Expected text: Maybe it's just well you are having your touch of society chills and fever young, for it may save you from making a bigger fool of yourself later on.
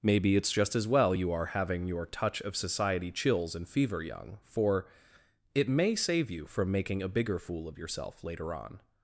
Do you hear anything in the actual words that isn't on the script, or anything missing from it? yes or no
yes